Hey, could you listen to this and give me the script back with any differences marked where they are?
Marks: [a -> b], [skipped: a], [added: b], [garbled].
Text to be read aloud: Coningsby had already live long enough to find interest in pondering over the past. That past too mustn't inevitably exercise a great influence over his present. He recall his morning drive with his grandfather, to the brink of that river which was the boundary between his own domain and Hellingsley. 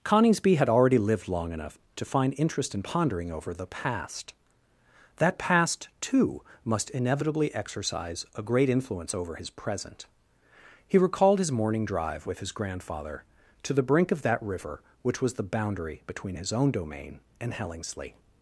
Coningsby had already [live -> lived] long enough to find interest in pondering over the past. That past too [mustn't -> must] inevitably exercise a great influence over his present. He [recall -> recalled] his morning drive with his grandfather, to the brink of that river which was the boundary between his own domain and Hellingsley.